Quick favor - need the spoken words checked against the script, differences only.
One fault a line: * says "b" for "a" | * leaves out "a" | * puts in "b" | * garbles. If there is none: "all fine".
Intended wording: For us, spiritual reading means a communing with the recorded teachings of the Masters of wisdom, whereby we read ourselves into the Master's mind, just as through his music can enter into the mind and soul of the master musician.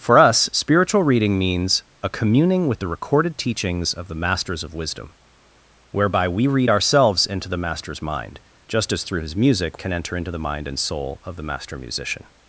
all fine